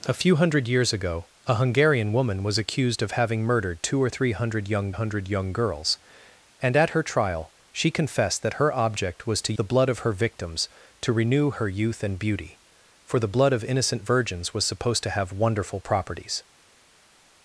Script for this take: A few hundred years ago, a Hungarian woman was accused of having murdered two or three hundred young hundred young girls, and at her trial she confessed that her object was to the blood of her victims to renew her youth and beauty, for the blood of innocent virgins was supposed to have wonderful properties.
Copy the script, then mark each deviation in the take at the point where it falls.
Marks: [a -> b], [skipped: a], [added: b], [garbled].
A few hundred years ago, a Hungarian woman was accused of having murdered two or three hundred young hundred young girls, and at her trial she confessed that her object was to the blood of her victims to renew her youth and beauty, for the blood of innocent virgins was supposed to have wonderful properties.